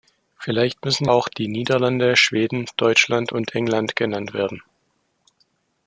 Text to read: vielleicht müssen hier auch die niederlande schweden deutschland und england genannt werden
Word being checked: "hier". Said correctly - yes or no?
no